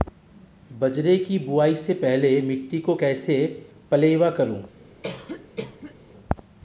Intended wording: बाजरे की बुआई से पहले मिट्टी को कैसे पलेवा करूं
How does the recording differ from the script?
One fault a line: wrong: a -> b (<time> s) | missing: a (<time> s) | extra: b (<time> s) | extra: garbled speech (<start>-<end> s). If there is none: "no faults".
no faults